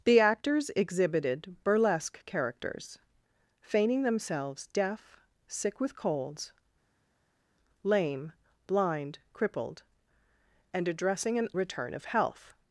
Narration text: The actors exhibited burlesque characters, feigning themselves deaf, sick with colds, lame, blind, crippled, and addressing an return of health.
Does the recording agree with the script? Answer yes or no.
yes